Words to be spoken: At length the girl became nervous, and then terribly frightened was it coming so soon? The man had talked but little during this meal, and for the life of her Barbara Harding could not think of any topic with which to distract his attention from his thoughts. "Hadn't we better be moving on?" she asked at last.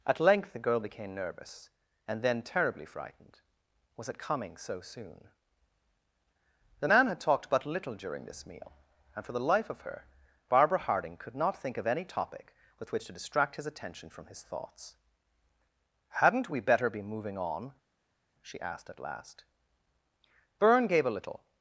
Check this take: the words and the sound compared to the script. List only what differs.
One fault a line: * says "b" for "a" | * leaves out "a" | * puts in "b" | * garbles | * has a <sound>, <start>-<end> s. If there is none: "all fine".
* puts in "Byrne gave a little"